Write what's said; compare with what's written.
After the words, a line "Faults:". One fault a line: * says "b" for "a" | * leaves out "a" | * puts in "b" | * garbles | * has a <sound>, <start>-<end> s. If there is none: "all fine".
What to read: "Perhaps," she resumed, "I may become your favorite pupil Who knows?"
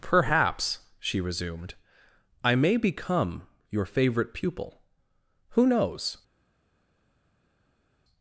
"Perhaps," she resumed, "I may become your favorite pupil Who knows?"
Faults:
all fine